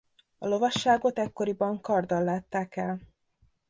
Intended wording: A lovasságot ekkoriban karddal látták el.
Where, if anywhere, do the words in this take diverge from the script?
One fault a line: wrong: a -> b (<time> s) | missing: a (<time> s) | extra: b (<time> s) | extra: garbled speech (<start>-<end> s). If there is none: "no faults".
no faults